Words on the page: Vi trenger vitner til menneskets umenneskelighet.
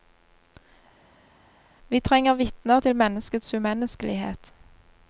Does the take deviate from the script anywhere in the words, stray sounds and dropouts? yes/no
no